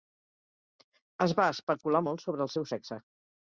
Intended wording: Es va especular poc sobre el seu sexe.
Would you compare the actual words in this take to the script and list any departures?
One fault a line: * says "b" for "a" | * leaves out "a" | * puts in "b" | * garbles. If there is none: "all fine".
* says "molt" for "poc"